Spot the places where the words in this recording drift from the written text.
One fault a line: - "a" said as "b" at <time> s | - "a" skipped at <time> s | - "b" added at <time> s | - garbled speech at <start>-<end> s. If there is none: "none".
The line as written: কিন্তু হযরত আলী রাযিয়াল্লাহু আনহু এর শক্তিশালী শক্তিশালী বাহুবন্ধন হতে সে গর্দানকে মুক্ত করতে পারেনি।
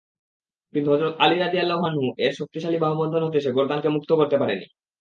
- "শক্তিশালী" skipped at 2.8 s